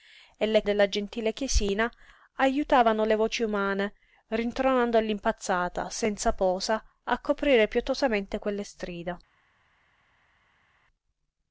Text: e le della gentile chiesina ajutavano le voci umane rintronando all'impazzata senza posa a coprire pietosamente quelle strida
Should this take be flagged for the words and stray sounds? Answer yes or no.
no